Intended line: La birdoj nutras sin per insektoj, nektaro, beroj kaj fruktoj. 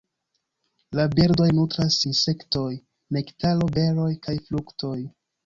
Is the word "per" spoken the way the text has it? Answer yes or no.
no